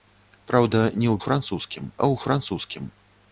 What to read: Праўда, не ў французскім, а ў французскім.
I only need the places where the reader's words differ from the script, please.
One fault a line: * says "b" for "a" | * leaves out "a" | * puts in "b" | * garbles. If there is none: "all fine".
all fine